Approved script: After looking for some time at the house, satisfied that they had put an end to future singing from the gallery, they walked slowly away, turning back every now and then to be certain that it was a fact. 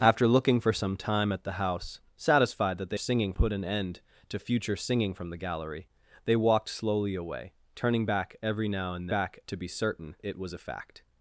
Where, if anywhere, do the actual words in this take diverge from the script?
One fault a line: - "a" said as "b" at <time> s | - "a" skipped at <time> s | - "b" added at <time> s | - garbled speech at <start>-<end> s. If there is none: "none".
- "had" said as "singing" at 3.0 s
- "then" said as "back" at 9.1 s
- "that" skipped at 10.1 s